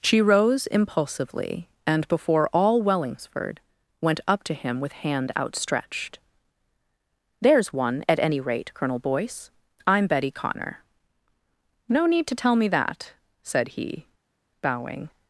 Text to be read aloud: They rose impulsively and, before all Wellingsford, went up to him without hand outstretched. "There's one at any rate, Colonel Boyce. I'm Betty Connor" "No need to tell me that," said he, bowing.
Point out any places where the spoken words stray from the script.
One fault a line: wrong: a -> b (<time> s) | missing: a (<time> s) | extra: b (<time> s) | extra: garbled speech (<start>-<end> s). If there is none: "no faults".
wrong: They -> She (0.0 s)
wrong: without -> with (4.8 s)